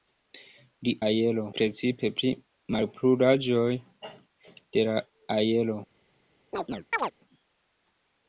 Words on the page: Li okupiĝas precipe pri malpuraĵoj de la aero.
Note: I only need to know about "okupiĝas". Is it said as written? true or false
false